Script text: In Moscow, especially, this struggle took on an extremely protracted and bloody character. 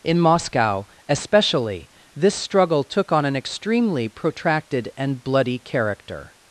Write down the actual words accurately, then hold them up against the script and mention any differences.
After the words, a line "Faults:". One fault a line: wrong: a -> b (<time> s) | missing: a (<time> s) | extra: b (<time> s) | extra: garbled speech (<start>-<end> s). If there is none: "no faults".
In Moscow, especially, this struggle took on an extremely protracted and bloody character.
Faults:
no faults